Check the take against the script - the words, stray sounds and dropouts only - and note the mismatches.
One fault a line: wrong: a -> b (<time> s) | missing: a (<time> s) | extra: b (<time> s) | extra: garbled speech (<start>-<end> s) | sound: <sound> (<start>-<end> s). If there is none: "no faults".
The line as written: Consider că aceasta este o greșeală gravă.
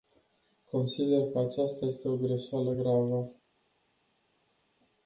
no faults